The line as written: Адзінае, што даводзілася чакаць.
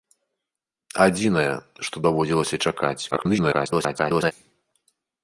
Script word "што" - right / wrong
right